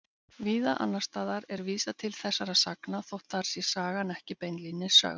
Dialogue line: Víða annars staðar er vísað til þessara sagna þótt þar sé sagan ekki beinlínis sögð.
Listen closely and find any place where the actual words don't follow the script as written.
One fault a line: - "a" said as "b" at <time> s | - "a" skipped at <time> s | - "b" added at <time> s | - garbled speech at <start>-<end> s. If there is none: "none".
none